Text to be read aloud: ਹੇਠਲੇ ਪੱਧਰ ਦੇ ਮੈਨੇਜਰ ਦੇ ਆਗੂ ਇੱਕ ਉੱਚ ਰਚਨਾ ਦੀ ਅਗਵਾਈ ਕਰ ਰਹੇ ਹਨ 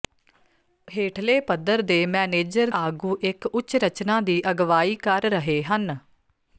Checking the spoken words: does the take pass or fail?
fail